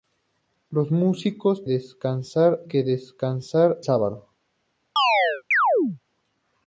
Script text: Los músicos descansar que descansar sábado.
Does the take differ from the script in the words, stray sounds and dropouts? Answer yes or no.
yes